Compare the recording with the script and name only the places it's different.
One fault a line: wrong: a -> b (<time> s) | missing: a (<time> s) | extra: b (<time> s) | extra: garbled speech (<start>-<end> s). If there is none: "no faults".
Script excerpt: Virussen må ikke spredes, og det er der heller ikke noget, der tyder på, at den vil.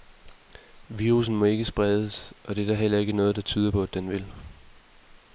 no faults